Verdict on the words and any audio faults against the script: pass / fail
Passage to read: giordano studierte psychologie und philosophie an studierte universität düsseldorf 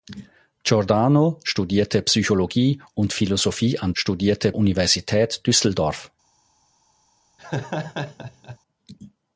fail